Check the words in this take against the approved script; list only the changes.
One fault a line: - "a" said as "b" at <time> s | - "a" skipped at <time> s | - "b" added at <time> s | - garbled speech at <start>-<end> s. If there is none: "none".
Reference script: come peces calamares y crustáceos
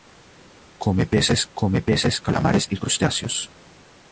- "come peces" added at 1.5 s